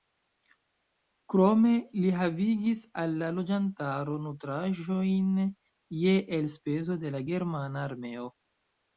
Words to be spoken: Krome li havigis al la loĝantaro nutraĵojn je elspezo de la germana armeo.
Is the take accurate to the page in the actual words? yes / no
yes